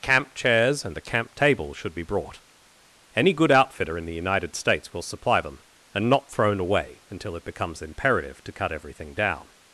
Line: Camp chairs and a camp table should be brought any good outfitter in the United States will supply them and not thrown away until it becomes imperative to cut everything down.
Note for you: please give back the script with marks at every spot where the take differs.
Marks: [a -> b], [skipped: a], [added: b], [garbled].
Camp chairs and a camp table should be brought any good outfitter in the United States will supply them and not thrown away until it becomes imperative to cut everything down.